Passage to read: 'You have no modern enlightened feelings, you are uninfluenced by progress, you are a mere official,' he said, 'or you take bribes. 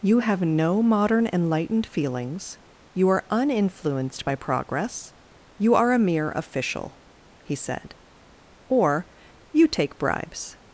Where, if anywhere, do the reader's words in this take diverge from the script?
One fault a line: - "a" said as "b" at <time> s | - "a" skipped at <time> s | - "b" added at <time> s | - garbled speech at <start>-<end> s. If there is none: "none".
none